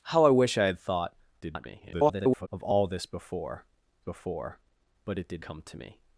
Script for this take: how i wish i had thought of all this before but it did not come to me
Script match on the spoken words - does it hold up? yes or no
no